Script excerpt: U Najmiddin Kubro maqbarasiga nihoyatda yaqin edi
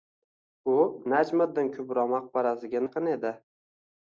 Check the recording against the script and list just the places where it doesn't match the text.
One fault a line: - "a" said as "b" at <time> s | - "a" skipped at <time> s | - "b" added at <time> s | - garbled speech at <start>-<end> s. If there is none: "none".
- "nihoyatda" skipped at 2.8 s